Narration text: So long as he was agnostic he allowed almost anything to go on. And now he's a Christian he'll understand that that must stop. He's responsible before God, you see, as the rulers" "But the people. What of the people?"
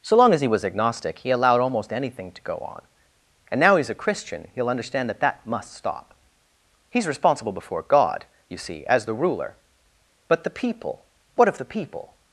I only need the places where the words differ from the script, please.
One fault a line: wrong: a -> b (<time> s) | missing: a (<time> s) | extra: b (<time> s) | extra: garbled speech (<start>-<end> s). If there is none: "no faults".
wrong: rulers -> ruler (9.1 s)